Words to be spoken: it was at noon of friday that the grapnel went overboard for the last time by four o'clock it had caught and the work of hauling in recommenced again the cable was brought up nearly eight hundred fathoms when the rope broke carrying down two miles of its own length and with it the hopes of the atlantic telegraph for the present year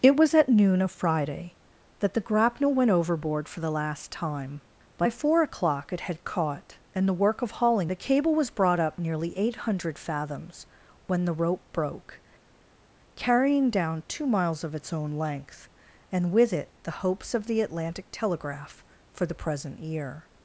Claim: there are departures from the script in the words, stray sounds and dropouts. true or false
true